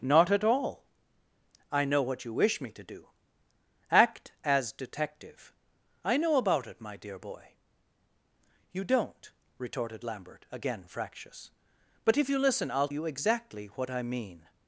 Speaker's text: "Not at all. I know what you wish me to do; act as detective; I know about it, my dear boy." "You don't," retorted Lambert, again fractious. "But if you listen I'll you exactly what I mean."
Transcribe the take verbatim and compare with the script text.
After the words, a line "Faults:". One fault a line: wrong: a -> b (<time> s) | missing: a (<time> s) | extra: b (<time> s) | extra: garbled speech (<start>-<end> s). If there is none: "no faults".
"Not at all. I know what you wish me to do; act as detective; I know about it, my dear boy." "You don't," retorted Lambert, again fractious. "But if you listen I'll you exactly what I mean."
Faults:
no faults